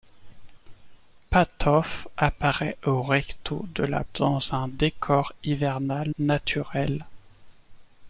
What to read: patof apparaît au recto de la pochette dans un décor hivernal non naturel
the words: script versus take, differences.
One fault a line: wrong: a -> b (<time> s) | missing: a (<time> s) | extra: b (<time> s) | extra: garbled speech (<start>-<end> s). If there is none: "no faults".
missing: pochette (4.0 s)
missing: non (6.1 s)